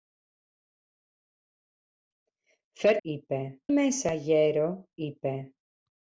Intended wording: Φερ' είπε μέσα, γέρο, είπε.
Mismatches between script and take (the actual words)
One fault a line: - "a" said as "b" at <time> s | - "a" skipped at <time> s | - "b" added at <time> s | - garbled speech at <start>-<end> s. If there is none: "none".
none